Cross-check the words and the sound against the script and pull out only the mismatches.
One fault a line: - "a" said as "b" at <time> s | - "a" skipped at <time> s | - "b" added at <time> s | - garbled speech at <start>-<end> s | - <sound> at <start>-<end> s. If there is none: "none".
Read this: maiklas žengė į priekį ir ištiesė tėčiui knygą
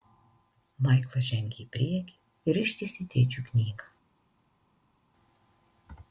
none